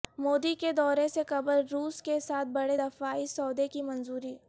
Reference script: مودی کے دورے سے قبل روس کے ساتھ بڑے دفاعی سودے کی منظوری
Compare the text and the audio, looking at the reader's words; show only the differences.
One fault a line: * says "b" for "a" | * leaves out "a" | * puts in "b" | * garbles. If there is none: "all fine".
all fine